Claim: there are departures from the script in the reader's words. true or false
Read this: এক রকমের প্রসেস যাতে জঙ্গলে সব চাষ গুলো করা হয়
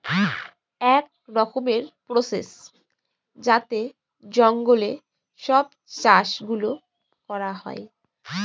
false